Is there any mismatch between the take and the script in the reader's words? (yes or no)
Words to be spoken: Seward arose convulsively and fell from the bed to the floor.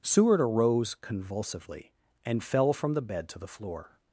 no